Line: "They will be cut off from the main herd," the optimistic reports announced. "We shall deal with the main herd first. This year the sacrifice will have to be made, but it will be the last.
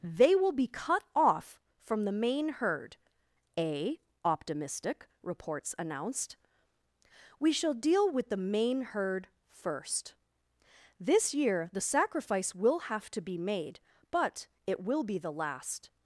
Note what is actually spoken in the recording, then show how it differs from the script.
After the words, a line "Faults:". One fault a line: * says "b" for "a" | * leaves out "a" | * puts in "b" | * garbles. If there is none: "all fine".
"They will be cut off from the main herd," a optimistic reports announced. "We shall deal with the main herd first. This year the sacrifice will have to be made, but it will be the last.
Faults:
* says "a" for "the"